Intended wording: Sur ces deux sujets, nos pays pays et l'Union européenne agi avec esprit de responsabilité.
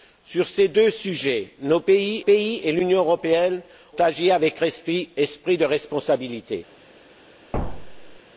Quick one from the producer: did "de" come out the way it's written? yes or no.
yes